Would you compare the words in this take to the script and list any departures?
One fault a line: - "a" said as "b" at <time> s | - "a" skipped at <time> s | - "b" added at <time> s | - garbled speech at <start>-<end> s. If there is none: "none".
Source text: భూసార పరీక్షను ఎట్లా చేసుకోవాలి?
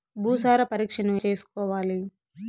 - "ఎట్లా" skipped at 1.1 s